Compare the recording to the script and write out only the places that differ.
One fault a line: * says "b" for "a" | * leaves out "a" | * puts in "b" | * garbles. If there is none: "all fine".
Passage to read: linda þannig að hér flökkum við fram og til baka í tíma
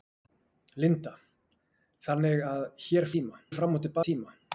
* says "tíma" for "flökkum"
* leaves out "baka"